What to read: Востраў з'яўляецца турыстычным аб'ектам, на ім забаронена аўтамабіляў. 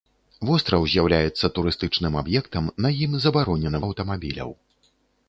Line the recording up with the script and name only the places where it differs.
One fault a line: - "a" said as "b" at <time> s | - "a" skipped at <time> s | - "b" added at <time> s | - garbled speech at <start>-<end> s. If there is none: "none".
none